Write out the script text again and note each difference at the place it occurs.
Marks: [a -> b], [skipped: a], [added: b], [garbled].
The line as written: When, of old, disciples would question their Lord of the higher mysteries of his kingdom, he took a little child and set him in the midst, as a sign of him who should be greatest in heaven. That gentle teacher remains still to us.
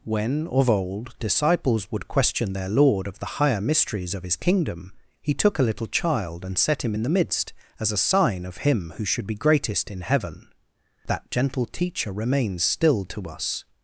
When, of old, disciples would question their Lord of the higher mysteries of his kingdom, he took a little child and set him in the midst, as a sign of him who should be greatest in heaven. That gentle teacher remains still to us.